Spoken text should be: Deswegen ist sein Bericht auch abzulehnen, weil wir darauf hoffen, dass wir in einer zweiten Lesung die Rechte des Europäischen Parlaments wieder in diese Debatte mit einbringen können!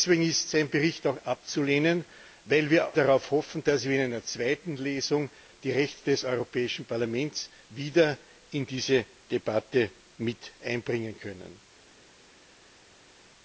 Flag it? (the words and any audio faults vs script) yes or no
no